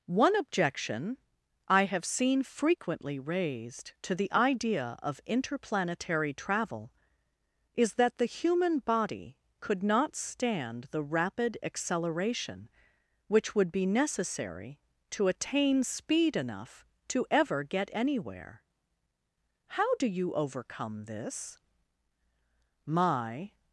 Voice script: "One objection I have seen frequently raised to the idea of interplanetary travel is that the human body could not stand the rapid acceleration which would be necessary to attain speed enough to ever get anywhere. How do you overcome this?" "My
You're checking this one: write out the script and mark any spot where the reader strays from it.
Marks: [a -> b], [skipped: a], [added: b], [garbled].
"One objection I have seen frequently raised to the idea of interplanetary travel is that the human body could not stand the rapid acceleration which would be necessary to attain speed enough to ever get anywhere. How do you overcome this?" "My